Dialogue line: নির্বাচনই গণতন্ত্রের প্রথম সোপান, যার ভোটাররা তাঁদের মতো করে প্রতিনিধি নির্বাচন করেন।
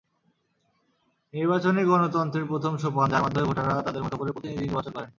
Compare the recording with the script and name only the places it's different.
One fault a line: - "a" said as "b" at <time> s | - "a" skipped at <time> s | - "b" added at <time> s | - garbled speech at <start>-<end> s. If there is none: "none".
- "মাধ্যমে" added at 3.2 s